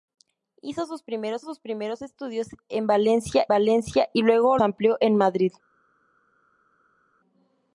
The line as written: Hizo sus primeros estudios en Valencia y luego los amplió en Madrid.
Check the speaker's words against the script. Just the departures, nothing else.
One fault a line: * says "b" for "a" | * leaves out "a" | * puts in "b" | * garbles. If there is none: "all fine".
* puts in "sus primeros"
* puts in "Valencia"
* leaves out "los"